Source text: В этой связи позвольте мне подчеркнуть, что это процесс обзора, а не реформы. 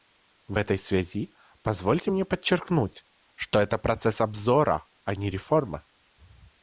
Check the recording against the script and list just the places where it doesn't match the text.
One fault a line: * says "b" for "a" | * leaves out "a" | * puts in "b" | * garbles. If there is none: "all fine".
all fine